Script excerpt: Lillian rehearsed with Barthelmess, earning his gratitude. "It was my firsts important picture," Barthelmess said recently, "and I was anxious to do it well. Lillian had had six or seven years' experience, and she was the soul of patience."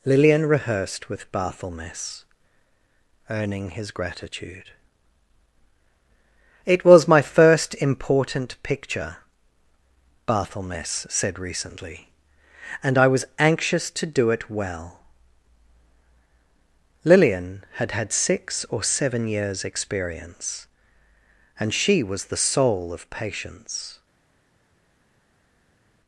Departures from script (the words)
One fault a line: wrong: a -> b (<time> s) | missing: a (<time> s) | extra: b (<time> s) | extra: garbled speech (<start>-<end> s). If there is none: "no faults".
wrong: firsts -> first (7.2 s)